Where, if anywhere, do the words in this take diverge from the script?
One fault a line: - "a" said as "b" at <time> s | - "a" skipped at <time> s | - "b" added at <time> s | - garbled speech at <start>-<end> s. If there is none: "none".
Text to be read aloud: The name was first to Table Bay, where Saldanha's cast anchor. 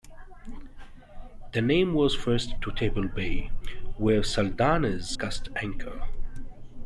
none